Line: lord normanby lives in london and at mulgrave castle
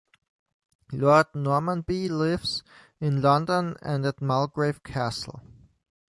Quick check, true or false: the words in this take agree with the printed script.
true